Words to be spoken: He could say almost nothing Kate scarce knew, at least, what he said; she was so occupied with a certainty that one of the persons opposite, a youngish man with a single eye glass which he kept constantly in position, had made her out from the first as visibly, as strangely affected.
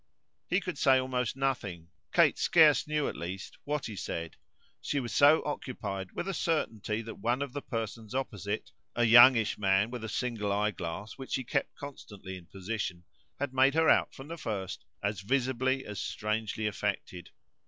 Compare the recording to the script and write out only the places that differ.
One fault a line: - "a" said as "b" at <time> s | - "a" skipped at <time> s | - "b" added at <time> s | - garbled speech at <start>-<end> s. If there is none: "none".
none